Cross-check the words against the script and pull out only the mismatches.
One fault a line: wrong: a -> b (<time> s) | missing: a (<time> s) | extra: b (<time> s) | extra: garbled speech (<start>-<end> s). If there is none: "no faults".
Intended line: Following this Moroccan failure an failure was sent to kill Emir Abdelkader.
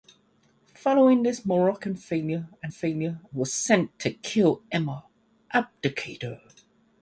no faults